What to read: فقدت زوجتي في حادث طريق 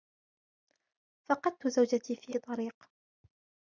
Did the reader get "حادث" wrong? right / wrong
wrong